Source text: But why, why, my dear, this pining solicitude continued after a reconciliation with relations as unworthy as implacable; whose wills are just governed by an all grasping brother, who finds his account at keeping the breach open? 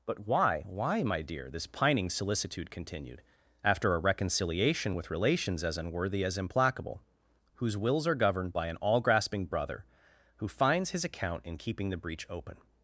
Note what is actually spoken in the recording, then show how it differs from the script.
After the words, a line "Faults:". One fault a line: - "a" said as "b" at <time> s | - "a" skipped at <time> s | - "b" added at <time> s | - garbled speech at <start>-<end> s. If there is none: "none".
But why, why, my dear, this pining solicitude continued after a reconciliation with relations as unworthy as implacable; whose wills are governed by an all grasping brother, who finds his account in keeping the breach open?
Faults:
- "just" skipped at 8.2 s
- "at" said as "in" at 11.4 s